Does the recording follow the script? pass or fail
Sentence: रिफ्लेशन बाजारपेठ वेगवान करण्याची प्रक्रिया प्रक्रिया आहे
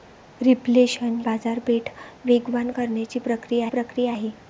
pass